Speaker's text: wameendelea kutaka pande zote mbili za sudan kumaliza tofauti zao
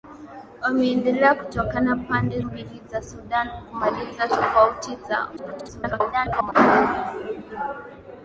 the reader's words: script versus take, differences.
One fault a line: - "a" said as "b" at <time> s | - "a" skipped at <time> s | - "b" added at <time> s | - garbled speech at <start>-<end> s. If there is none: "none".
- "zote" skipped at 2.4 s
- garbled speech at 5.4-6.5 s